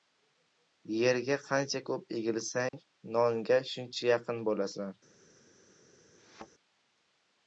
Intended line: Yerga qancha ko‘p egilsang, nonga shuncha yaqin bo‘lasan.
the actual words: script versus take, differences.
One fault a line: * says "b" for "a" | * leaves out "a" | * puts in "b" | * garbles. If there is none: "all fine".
all fine